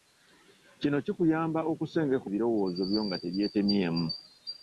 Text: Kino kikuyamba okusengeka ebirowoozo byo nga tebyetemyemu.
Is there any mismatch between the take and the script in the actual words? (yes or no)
no